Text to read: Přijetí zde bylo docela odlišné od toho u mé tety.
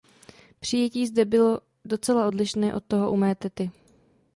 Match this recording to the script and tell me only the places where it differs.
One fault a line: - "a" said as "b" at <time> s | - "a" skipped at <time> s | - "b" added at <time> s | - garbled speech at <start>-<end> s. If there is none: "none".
none